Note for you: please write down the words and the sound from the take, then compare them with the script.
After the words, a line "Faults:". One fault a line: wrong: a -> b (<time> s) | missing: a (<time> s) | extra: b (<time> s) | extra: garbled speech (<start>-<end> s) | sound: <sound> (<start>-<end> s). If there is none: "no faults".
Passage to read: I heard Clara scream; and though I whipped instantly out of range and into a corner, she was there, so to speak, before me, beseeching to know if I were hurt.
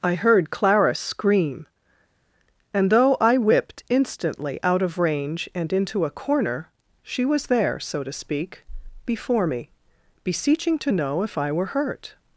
I heard Clara scream; and though I whipped instantly out of range and into a corner, she was there, so to speak, before me, beseeching to know if I were hurt.
Faults:
no faults